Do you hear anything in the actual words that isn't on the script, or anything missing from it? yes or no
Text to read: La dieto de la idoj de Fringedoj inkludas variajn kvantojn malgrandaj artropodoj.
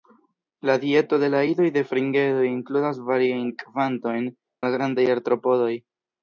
no